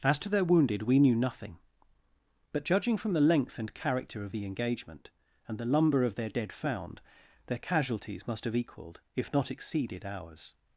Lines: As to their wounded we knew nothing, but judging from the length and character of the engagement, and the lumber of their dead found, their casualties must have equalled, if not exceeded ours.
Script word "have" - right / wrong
right